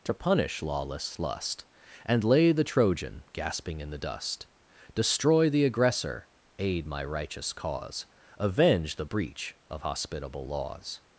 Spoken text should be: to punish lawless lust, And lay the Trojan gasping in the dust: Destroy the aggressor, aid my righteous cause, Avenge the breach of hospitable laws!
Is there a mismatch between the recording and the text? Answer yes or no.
no